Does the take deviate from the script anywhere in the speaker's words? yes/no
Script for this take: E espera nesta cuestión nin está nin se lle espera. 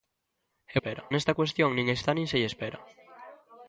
no